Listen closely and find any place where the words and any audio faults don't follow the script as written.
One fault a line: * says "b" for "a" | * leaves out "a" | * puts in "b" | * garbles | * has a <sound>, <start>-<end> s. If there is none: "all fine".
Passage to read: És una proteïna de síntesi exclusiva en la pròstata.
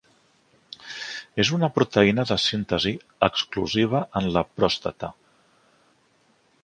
all fine